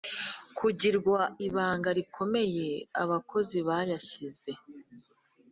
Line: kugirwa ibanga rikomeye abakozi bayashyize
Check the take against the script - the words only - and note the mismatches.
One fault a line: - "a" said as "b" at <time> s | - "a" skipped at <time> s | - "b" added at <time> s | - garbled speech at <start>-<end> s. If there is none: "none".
none